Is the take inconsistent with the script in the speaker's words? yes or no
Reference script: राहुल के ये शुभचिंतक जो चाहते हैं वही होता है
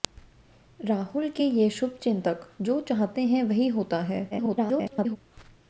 yes